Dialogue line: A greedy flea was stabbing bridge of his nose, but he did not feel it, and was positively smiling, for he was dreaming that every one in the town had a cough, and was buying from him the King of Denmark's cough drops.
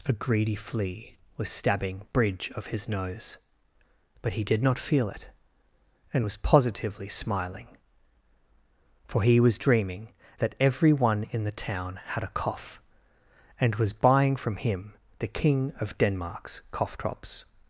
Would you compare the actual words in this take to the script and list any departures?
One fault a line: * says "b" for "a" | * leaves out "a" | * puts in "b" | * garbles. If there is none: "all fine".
all fine